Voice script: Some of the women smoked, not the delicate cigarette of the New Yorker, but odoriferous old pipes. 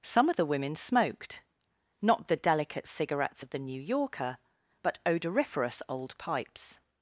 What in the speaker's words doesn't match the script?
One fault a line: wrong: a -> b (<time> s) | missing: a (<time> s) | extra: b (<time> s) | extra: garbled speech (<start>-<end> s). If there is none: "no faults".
wrong: cigarette -> cigarettes (2.9 s)